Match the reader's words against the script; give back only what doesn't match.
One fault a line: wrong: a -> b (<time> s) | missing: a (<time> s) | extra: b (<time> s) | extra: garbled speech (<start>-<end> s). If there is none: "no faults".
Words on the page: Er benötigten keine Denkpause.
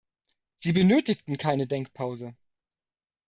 wrong: Er -> Sie (0.6 s)